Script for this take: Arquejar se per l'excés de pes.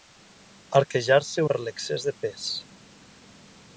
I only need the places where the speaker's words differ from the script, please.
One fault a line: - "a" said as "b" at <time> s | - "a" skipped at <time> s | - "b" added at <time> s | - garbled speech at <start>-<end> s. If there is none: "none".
none